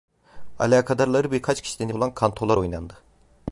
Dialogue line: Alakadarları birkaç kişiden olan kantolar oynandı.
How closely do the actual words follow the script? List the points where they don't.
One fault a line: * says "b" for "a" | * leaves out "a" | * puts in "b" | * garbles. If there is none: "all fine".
all fine